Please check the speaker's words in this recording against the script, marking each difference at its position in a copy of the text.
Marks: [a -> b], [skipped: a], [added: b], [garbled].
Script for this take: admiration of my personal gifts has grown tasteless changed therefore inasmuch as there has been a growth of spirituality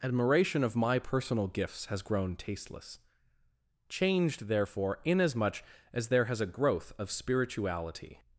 admiration of my personal gifts has grown tasteless changed therefore inasmuch as there has [skipped: been] a growth of spirituality